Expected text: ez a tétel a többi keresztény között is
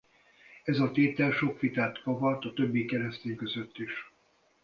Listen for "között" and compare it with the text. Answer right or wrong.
right